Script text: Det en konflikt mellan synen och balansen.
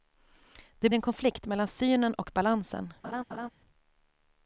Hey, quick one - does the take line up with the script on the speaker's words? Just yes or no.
yes